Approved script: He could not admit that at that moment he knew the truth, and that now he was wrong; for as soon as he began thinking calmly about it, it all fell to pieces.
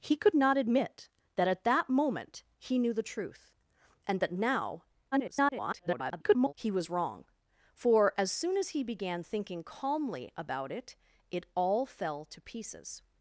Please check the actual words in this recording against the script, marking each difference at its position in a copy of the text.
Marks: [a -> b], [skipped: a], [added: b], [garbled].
He could not admit that at that moment he knew the truth, and that now [garbled] he was wrong; for as soon as he began thinking calmly about it, it all fell to pieces.